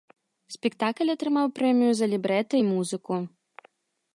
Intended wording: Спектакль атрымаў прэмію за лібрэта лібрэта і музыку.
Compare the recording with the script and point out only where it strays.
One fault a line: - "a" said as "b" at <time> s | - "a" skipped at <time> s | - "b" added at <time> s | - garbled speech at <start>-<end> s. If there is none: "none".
- "лібрэта" skipped at 2.5 s